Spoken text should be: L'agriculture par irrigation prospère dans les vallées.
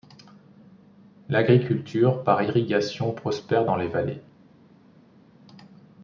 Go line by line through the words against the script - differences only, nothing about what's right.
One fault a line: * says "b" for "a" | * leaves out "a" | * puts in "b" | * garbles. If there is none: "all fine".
all fine